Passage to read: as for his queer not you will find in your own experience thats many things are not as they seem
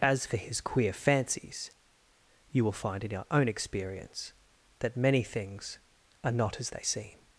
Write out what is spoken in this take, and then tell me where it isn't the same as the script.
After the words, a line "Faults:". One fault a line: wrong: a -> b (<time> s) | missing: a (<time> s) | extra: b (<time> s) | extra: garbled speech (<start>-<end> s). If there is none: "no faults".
as for his queer fancies you will find in your own experience that many things are not as they seem
Faults:
wrong: not -> fancies (0.9 s)
wrong: thats -> that (4.8 s)